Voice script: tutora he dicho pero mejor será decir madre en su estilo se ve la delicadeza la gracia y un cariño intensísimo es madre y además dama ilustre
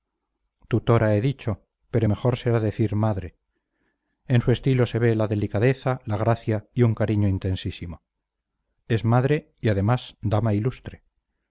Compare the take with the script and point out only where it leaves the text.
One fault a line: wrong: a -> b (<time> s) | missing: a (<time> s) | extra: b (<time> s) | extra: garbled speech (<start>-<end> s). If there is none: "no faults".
no faults